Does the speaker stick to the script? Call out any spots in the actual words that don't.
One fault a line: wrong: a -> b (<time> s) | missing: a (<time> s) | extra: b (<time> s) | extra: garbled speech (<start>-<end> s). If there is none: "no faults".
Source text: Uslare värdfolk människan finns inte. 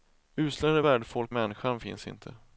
no faults